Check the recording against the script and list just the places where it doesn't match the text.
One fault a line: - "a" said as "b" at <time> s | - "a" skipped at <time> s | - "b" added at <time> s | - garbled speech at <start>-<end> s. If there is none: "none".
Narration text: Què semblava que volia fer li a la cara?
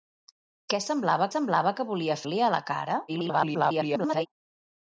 - "semblava" added at 1.3 s
- "fer" skipped at 2.2 s
- garbled speech at 3.1-4.3 s